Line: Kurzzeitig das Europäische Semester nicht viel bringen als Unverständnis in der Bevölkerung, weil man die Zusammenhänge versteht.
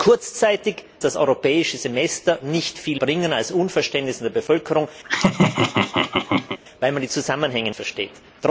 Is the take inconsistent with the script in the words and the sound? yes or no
yes